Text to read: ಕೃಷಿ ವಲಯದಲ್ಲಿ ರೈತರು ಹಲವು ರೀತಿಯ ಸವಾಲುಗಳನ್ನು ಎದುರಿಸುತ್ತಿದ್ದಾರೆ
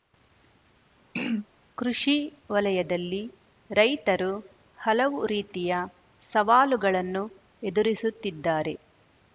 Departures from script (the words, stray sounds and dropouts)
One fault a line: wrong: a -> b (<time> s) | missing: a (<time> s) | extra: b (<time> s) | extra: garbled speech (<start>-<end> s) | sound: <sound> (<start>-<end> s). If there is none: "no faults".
sound: throat clearing (1.1-1.5 s)